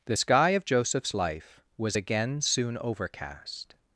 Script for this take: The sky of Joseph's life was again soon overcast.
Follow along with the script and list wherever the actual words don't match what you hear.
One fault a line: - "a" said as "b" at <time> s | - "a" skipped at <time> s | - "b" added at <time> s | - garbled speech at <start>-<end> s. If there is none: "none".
none